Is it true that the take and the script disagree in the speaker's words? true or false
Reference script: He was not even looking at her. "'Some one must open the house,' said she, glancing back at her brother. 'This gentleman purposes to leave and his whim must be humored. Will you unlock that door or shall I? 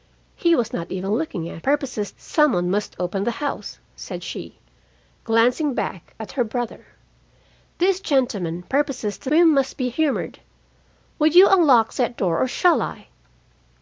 true